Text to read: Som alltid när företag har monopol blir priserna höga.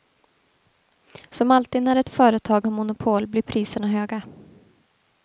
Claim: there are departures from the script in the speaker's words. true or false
true